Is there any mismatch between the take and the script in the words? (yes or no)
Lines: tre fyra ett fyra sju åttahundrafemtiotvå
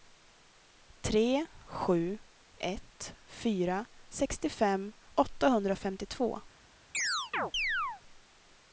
yes